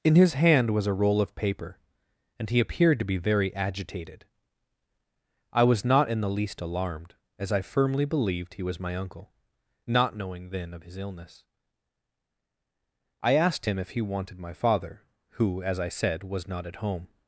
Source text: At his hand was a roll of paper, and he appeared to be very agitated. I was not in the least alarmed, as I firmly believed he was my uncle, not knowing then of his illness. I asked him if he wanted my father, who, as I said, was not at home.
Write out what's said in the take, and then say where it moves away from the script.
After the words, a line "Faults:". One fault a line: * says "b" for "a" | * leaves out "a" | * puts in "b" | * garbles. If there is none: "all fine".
In his hand was a roll of paper, and he appeared to be very agitated. I was not in the least alarmed, as I firmly believed he was my uncle, not knowing then of his illness. I asked him if he wanted my father, who, as I said, was not at home.
Faults:
* says "In" for "At"